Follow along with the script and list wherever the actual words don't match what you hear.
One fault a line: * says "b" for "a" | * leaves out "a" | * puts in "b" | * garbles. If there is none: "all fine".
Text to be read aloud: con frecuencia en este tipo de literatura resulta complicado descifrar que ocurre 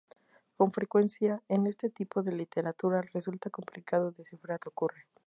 all fine